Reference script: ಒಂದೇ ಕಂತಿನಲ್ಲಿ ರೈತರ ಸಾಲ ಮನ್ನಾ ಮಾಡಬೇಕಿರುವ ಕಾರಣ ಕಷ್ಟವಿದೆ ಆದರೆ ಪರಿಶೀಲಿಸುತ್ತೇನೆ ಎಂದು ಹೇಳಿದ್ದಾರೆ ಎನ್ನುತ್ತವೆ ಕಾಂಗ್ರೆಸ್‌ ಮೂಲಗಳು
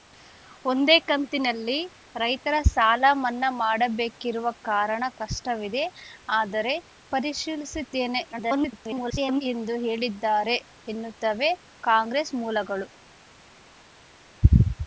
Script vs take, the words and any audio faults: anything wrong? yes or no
yes